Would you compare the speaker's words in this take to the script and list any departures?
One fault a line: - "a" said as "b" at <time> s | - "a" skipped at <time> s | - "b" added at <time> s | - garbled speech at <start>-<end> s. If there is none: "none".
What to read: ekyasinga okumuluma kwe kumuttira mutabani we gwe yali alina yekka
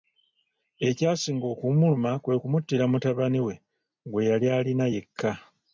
none